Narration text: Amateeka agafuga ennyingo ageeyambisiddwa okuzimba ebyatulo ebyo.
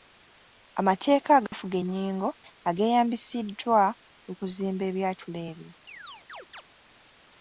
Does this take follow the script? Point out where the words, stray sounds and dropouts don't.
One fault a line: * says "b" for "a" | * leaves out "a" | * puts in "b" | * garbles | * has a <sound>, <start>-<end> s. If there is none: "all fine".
* has a dropout, 1.5-1.5 s
* has a chirp, 5.9-6.6 s